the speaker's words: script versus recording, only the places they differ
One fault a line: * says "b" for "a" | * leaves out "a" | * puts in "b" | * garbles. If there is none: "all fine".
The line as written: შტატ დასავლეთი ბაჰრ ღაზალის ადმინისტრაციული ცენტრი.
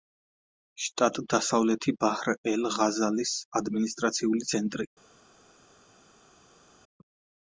* puts in "ელ"